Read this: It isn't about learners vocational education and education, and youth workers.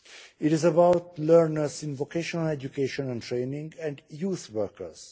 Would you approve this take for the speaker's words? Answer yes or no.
no